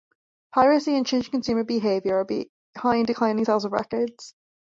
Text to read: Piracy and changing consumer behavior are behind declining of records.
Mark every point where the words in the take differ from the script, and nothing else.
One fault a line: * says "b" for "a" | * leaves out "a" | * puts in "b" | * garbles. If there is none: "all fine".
* puts in "sales"